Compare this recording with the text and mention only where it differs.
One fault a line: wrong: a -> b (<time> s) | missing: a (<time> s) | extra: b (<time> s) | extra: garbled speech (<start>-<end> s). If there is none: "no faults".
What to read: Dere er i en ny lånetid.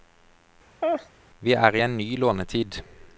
wrong: Dere -> Vi (1.4 s)